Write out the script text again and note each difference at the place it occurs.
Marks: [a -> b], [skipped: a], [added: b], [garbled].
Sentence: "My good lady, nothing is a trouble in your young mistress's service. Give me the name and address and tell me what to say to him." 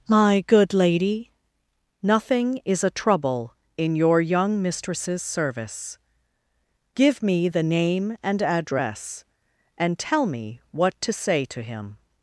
"My good lady, nothing is a trouble in your young mistress's service. Give me the name and address and tell me what to say to him."